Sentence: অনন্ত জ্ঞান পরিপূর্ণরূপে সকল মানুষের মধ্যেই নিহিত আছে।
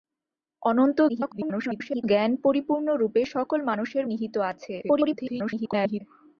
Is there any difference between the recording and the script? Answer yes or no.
yes